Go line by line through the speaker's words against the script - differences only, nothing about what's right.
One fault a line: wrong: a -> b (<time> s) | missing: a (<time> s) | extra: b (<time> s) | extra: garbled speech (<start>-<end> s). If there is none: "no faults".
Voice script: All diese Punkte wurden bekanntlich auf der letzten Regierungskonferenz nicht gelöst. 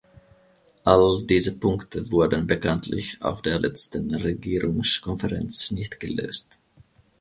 no faults